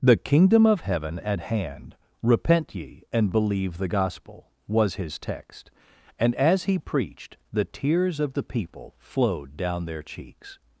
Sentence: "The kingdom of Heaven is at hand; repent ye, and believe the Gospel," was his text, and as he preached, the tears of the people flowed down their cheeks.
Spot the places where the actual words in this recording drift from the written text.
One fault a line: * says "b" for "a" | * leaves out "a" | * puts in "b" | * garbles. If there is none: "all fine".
* leaves out "is"